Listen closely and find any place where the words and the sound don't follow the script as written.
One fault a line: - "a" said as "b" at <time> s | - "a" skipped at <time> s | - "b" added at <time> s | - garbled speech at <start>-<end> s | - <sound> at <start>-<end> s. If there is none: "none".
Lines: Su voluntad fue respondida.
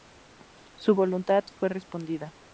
none